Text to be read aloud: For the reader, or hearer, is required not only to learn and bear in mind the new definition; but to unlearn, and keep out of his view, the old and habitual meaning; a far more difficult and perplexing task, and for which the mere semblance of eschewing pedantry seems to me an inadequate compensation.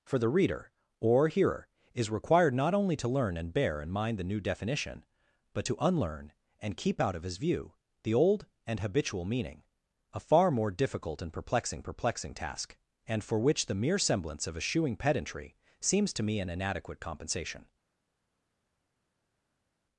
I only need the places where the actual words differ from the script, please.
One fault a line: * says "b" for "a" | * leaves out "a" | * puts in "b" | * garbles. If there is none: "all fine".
* puts in "perplexing"